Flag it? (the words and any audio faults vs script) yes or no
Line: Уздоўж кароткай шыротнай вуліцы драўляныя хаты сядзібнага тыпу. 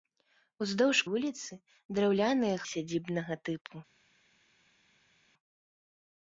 yes